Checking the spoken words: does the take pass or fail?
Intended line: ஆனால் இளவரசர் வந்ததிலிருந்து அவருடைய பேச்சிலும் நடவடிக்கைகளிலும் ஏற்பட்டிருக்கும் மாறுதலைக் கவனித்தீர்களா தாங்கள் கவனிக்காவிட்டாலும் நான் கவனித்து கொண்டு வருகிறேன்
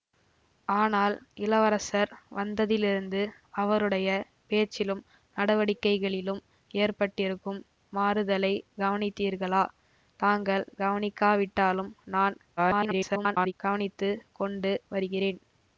fail